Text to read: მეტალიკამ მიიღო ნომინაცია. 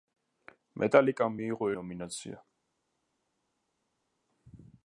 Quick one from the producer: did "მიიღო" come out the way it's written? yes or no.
yes